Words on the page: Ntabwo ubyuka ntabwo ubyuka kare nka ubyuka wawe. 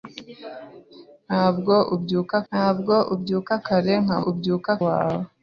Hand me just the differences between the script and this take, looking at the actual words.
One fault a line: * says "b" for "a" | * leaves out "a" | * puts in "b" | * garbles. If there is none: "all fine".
all fine